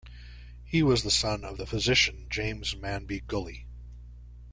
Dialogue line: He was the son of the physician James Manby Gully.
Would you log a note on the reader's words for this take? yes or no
no